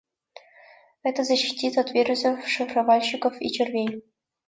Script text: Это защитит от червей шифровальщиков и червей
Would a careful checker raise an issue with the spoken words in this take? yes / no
yes